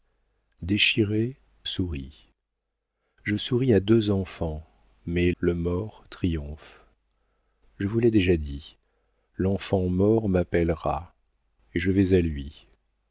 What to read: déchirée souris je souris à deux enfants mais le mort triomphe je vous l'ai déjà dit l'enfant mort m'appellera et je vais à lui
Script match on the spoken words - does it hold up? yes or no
yes